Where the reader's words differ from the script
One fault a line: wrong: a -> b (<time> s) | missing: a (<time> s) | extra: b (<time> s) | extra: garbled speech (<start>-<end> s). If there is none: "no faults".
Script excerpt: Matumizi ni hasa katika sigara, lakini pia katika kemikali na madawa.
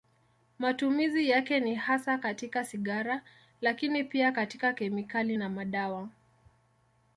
extra: yake (1.3 s)